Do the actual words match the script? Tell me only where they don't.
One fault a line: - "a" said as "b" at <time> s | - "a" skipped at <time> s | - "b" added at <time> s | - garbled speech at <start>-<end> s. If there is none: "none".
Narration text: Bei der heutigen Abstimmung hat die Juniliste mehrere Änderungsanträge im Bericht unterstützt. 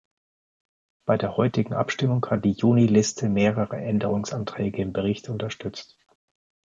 none